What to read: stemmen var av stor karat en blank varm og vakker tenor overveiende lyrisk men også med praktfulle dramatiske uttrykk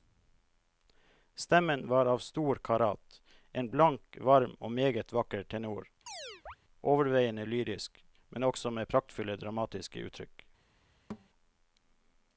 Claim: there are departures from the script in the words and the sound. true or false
true